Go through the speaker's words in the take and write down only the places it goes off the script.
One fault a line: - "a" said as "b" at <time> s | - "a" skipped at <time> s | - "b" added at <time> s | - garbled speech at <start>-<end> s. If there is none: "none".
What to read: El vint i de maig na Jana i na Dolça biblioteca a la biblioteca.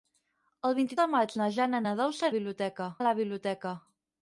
none